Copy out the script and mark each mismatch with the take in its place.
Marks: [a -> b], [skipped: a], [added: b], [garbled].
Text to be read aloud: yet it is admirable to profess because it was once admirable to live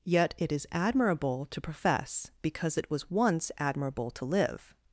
yet it is admirable to profess because it was once admirable to live